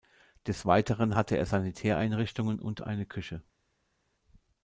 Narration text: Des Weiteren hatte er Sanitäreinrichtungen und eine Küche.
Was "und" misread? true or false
false